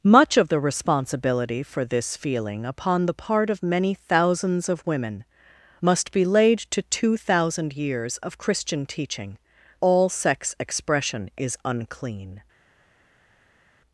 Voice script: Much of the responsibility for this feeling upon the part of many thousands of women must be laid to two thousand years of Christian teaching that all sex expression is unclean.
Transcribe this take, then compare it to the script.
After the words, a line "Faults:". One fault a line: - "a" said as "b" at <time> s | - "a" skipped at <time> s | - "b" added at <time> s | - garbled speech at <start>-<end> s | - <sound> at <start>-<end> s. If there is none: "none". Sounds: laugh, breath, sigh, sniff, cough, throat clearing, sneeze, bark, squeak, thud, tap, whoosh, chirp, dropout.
Much of the responsibility for this feeling upon the part of many thousands of women must be laid to two thousand years of Christian teaching all sex expression is unclean.
Faults:
- "that" skipped at 9.4 s